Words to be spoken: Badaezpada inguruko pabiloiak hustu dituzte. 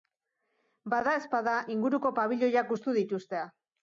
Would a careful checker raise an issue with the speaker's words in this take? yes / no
no